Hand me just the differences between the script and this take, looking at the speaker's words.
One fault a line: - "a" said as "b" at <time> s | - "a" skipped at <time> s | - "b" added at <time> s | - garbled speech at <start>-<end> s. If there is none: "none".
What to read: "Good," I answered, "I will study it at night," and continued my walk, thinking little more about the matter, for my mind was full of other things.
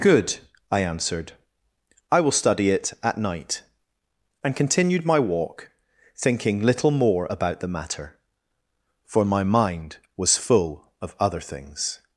none